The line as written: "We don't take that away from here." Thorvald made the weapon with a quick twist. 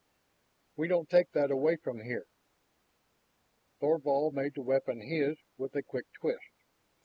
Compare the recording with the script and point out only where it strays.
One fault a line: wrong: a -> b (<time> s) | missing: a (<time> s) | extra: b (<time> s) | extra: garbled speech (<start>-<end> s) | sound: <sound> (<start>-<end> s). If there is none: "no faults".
extra: his (5.0 s)